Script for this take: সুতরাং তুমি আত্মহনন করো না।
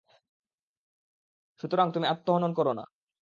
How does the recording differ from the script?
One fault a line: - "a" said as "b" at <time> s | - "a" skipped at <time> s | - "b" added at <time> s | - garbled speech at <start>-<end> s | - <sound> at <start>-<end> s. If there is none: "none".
none